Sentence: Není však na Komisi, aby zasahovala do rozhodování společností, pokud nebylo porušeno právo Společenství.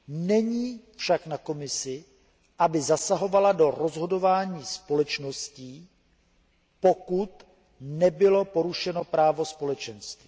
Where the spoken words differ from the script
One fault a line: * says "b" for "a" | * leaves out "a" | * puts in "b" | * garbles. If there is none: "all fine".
all fine